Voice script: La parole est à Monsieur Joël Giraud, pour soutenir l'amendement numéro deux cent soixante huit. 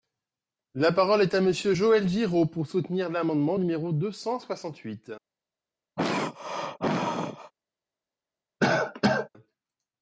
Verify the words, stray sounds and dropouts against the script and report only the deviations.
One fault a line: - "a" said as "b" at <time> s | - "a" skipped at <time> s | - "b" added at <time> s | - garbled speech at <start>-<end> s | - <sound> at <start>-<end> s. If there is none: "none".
- throat clearing at 6.0-7.5 s
- cough at 8.6-9.3 s